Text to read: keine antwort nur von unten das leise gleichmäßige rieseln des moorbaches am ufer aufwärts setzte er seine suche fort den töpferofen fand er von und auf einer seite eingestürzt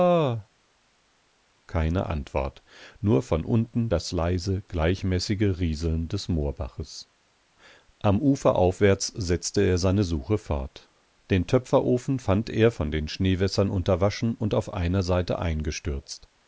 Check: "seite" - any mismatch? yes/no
no